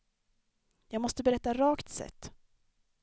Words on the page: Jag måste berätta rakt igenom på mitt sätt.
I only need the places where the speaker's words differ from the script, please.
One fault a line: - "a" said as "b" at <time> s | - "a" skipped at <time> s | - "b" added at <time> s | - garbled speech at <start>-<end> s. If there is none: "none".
- "igenom på mitt" skipped at 1.9 s